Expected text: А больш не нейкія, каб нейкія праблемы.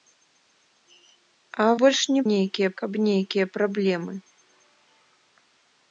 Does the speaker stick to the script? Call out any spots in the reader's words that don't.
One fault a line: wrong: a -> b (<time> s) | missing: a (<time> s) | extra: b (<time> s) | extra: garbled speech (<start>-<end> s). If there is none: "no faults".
no faults